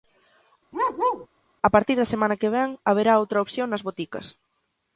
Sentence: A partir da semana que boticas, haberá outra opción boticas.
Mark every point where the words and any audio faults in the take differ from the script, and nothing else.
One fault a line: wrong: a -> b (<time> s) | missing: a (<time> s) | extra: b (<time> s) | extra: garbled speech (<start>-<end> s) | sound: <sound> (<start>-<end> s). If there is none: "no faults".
sound: bark (0.7-1.3 s)
wrong: boticas -> vén (2.6 s)
extra: nas (3.7 s)